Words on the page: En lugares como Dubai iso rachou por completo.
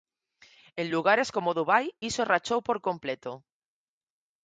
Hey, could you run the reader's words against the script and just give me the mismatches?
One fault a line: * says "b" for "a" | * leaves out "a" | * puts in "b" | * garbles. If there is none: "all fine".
all fine